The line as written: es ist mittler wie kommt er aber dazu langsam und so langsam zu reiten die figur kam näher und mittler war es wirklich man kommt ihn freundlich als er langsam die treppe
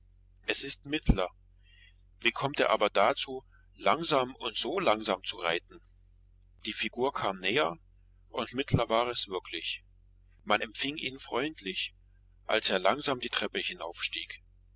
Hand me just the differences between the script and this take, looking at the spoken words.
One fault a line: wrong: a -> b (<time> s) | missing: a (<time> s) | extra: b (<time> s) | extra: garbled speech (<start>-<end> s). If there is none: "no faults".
wrong: kommt -> empfing (10.6 s)